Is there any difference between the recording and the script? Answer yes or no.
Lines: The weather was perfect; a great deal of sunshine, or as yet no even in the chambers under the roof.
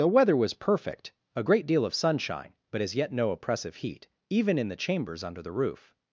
yes